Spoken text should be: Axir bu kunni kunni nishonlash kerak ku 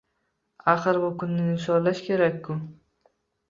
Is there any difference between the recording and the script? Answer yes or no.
yes